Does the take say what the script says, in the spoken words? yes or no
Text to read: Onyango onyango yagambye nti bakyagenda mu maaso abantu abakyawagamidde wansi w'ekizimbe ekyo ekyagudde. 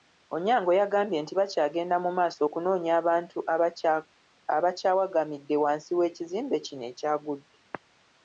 no